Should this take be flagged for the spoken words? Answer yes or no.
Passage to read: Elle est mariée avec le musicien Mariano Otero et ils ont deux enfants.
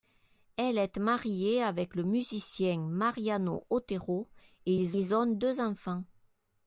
yes